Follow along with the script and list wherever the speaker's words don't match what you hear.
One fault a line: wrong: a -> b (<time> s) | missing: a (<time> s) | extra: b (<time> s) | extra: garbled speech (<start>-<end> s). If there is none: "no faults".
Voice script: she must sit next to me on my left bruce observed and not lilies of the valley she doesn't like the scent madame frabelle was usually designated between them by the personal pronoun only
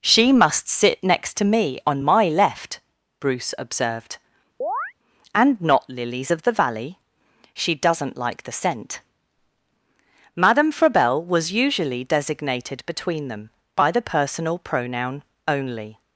no faults